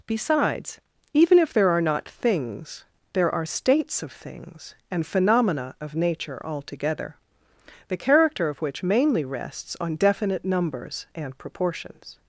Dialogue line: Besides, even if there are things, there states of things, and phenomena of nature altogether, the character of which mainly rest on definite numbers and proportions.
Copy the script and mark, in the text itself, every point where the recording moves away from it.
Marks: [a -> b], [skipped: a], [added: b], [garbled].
Besides, even if there are [added: not] things, there [added: are] states of things, and phenomena of nature altogether, the character of which mainly [rest -> rests] on definite numbers and proportions.